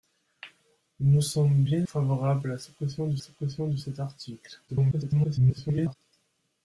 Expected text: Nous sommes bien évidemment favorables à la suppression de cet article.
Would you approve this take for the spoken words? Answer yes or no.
no